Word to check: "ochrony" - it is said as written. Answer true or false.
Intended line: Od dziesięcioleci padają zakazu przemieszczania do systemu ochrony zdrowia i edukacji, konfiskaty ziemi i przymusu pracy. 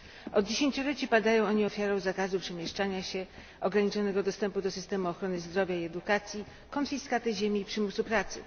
true